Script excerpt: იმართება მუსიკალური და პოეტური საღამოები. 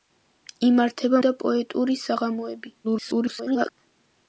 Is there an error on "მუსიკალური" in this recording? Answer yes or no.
yes